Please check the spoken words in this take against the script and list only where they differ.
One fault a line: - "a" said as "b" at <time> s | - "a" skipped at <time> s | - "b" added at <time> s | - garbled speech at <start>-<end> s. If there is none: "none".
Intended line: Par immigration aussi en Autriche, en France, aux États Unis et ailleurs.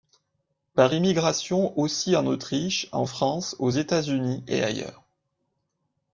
none